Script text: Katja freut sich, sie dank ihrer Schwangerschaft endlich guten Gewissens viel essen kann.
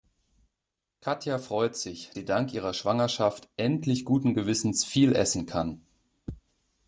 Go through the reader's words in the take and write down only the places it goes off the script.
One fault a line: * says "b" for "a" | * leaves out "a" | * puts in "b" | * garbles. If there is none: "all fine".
all fine